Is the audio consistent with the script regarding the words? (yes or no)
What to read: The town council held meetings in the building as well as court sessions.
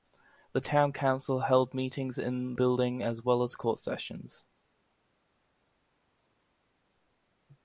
no